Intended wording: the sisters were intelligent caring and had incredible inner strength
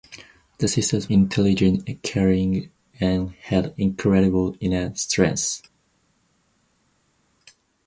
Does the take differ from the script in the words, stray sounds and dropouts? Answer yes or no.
yes